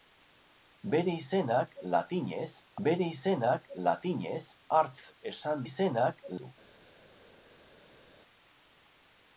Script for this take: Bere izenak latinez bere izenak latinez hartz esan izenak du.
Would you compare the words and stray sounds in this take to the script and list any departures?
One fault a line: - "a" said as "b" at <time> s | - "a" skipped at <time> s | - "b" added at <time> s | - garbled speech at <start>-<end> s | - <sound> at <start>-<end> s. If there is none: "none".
none